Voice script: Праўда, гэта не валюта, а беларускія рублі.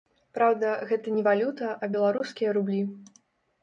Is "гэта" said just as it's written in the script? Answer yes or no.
yes